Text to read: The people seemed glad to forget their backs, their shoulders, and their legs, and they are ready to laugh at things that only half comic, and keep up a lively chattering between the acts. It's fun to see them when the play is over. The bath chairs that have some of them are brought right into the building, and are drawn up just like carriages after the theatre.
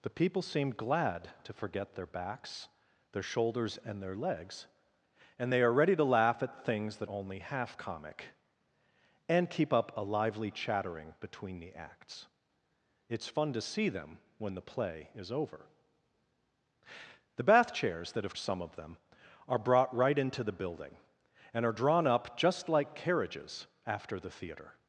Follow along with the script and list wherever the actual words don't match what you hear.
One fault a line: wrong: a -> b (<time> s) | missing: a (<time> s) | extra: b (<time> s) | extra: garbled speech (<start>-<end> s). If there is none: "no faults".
no faults